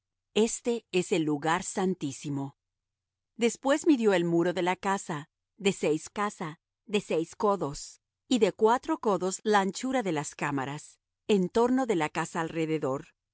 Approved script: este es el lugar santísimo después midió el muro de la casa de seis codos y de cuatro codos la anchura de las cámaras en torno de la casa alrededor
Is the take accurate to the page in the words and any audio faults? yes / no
no